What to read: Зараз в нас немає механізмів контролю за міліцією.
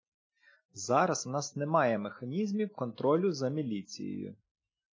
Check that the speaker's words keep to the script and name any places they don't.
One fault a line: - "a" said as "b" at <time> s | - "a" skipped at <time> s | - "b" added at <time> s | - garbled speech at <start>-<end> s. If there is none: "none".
none